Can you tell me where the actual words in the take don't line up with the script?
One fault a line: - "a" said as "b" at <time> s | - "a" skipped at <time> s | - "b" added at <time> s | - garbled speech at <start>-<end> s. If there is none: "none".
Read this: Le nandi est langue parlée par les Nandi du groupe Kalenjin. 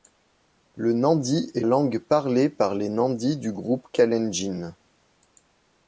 none